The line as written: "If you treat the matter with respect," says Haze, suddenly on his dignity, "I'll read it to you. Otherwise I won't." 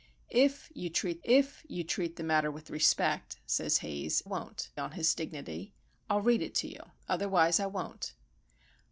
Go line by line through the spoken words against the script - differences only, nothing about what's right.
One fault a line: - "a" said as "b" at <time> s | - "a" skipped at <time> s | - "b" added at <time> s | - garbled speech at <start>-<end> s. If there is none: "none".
- "if you treat" added at 1.2 s
- "suddenly" said as "won't" at 4.2 s